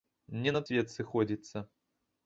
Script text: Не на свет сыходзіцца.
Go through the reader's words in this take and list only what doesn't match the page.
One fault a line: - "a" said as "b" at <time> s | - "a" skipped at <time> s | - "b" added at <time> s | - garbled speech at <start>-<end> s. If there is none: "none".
none